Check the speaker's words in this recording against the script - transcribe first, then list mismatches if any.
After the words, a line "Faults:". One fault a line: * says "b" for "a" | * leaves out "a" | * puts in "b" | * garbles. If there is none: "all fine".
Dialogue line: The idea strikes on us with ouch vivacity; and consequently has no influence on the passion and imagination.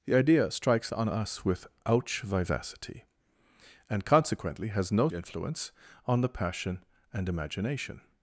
The idea strikes on us with ouch vivacity; and consequently has no influence on the passion and imagination.
Faults:
all fine